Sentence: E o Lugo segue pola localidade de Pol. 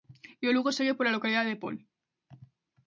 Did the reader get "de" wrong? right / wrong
right